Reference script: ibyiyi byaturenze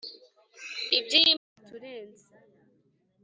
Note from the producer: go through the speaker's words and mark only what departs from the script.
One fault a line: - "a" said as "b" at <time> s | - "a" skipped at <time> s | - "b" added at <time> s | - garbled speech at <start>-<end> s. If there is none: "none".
none